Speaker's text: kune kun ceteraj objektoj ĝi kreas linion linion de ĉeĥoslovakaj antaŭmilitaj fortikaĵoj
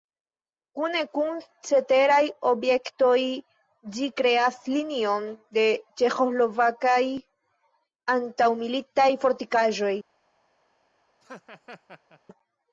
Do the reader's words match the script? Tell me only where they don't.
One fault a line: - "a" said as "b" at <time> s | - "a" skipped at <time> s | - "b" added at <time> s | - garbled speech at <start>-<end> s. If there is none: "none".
- "linion" skipped at 5.3 s